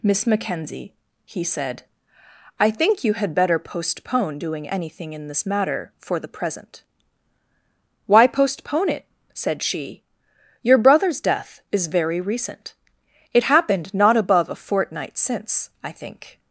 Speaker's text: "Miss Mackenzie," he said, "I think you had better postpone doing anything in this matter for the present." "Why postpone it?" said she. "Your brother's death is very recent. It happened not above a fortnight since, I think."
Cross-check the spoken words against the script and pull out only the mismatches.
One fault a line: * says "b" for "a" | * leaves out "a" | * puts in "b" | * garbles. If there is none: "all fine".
all fine